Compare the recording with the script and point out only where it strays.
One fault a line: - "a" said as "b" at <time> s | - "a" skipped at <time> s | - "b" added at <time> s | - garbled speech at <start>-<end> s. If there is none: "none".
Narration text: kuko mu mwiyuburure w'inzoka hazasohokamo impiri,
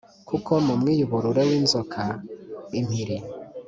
- "hazasohokamo" skipped at 2.0 s